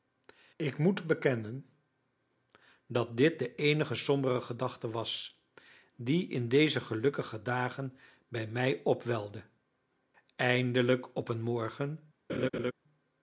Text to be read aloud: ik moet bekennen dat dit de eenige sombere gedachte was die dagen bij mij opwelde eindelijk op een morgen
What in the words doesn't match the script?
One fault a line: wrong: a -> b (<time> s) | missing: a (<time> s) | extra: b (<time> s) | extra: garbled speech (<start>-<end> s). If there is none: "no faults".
extra: in deze gelukkige (6.3 s)